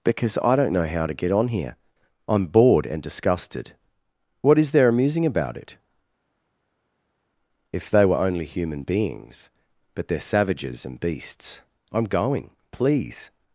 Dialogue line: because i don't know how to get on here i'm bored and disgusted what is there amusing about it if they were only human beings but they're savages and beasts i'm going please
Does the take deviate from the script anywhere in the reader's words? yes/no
no